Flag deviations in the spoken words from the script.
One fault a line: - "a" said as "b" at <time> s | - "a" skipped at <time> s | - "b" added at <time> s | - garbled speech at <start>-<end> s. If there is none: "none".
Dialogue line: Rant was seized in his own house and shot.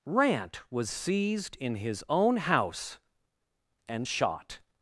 none